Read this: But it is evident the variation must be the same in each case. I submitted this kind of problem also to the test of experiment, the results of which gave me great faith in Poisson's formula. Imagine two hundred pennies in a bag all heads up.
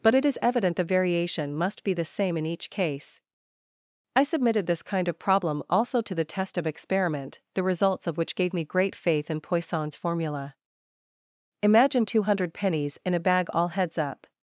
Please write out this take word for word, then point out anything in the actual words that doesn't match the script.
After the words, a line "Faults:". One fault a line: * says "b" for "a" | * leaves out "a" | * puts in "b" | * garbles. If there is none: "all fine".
But it is evident the variation must be the same in each case. I submitted this kind of problem also to the test of experiment, the results of which gave me great faith in Poisson's formula. Imagine two hundred pennies in a bag all heads up.
Faults:
all fine